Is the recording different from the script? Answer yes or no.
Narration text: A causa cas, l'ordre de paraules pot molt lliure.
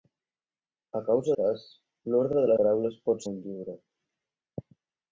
no